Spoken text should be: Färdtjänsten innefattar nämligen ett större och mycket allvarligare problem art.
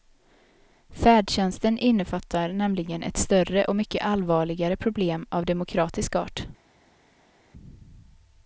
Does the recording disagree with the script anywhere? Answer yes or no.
yes